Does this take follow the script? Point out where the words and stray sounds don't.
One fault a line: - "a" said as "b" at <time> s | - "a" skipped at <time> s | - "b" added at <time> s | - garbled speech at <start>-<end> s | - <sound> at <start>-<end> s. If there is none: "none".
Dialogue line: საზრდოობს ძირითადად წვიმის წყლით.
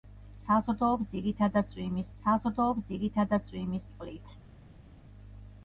- "საზრდოობს ძირითადად წვიმის" added at 2.2 s